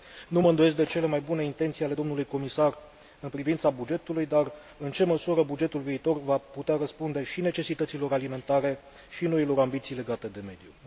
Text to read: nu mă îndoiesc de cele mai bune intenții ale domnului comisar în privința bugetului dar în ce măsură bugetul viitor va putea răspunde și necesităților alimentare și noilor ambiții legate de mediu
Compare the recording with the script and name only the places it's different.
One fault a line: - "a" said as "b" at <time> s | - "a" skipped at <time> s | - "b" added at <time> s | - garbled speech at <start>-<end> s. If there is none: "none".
none